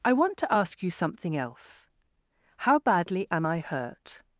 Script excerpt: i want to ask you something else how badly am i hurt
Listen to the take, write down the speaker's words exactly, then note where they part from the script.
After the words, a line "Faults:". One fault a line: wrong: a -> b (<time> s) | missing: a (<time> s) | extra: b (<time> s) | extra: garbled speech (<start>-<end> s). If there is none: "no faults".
i want to ask you something else how badly am i hurt
Faults:
no faults